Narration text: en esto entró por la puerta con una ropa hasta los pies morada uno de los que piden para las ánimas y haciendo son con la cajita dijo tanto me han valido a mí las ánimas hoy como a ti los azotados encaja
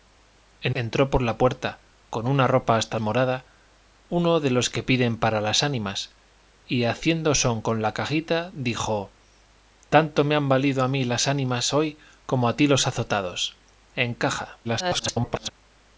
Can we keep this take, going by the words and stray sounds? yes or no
no